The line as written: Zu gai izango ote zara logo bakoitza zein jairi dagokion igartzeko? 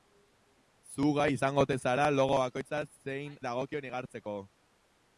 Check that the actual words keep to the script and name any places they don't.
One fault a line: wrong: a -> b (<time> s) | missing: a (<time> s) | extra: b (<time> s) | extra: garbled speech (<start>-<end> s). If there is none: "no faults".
missing: jairi (3.4 s)